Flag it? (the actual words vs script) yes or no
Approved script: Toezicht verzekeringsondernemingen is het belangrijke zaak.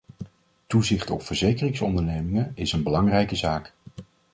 yes